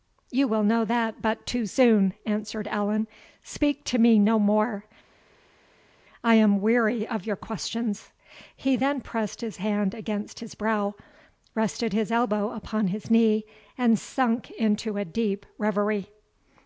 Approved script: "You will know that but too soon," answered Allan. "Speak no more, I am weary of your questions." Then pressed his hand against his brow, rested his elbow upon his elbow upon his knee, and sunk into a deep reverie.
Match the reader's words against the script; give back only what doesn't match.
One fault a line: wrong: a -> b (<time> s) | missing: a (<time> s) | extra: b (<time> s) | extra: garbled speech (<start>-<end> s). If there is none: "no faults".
extra: to me (3.8 s)
extra: He (8.5 s)
missing: elbow upon his (13.1 s)